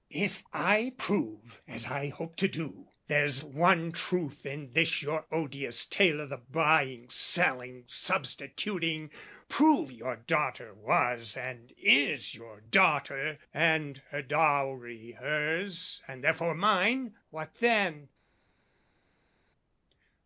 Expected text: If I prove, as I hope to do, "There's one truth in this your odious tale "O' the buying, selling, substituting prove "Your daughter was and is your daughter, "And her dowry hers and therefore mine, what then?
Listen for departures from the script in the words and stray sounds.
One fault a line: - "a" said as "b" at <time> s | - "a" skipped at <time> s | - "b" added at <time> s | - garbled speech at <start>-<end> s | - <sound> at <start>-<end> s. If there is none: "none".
none